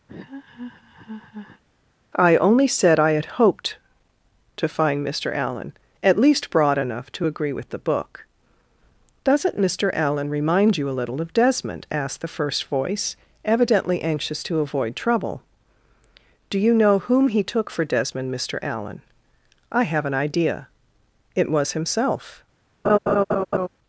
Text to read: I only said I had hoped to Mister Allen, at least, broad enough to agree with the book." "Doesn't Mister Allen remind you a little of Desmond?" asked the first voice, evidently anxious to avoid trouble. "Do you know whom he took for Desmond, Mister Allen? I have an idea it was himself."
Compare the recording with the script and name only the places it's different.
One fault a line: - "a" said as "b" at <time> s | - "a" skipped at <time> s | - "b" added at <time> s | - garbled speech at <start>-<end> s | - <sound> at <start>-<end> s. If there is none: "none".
- laugh at 0.1-1.6 s
- "find" added at 4.7 s
- laugh at 22.8-23.7 s